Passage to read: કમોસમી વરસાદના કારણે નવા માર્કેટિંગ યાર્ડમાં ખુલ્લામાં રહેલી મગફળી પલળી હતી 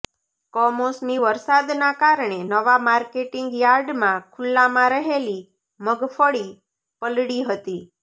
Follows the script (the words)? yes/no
yes